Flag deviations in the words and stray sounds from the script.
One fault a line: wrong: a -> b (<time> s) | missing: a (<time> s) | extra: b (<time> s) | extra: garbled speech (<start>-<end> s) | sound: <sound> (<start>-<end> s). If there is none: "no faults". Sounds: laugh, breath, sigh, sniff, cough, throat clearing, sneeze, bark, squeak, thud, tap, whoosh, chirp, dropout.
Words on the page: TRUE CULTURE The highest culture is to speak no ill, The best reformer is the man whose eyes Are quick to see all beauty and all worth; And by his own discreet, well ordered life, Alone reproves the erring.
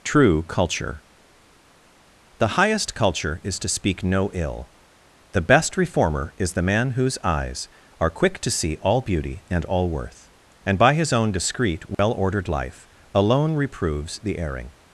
sound: dropout (11.9-12.0 s)